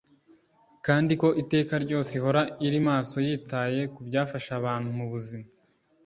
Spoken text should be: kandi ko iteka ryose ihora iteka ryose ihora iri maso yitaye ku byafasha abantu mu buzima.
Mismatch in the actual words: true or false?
true